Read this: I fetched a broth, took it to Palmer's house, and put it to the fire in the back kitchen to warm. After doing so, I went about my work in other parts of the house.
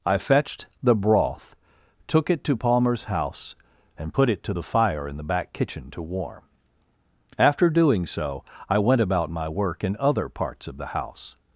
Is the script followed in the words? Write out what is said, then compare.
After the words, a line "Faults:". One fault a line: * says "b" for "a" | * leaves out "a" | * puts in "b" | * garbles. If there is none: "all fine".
I fetched the broth, took it to Palmer's house, and put it to the fire in the back kitchen to warm. After doing so, I went about my work in other parts of the house.
Faults:
* says "the" for "a"